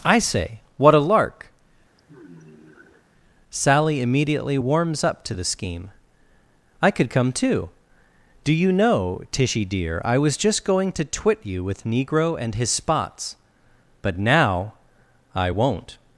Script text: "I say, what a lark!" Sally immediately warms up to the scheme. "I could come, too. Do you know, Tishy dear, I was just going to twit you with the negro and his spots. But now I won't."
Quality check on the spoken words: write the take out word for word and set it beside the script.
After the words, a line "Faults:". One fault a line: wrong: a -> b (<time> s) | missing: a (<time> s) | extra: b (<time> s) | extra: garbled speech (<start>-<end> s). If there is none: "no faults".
"I say, what a lark!" Sally immediately warms up to the scheme. "I could come, too. Do you know, Tishy dear, I was just going to twit you with negro and his spots. But now I won't."
Faults:
missing: the (11.8 s)